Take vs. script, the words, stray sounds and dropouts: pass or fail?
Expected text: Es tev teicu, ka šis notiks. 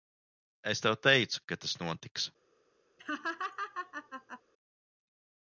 fail